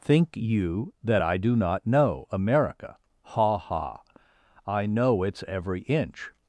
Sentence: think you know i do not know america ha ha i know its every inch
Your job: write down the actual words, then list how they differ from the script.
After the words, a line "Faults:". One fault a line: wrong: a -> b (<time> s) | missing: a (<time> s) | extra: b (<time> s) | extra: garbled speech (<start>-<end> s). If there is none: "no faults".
think you that i do not know america ha ha i know its every inch
Faults:
wrong: know -> that (1.0 s)